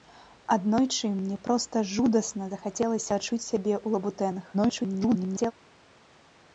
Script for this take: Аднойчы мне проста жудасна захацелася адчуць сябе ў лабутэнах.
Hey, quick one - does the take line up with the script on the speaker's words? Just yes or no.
no